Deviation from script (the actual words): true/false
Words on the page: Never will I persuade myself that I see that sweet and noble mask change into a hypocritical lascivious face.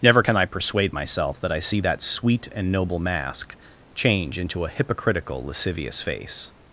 true